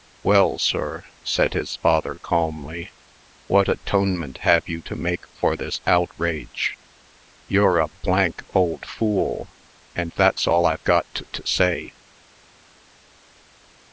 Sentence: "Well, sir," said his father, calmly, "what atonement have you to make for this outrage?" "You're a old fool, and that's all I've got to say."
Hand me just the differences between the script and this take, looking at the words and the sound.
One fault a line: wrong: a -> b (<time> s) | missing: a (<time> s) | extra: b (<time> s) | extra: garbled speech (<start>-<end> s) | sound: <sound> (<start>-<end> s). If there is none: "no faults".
extra: to (11.3 s)